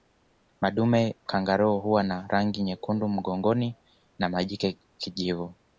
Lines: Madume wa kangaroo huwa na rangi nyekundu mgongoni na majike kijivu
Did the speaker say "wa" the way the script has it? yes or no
no